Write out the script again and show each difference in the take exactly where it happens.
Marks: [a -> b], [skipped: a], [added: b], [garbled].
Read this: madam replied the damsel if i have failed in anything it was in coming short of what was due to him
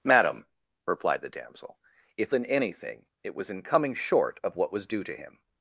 madam replied the damsel if [skipped: i have failed] in anything it was in coming short of what was due to him